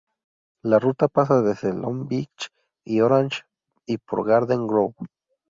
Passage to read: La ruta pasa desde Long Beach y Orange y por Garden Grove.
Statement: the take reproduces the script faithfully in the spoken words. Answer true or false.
true